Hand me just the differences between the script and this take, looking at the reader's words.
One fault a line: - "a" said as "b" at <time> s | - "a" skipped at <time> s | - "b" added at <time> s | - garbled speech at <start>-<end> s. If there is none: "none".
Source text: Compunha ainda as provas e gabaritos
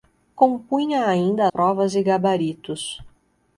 - "as" skipped at 1.5 s